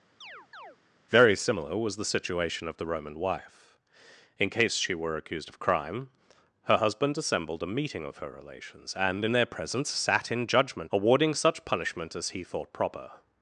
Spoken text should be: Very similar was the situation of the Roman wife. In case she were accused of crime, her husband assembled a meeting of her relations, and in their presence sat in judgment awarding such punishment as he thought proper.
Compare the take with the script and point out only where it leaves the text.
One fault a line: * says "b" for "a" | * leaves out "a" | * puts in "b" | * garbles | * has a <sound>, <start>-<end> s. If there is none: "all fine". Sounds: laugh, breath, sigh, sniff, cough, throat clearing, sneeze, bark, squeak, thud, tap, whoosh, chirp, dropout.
* has a chirp, 0.2-0.8 s